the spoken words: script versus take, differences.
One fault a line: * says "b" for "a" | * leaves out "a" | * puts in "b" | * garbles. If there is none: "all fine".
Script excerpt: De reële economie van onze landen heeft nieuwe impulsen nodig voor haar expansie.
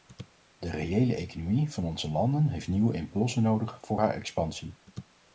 all fine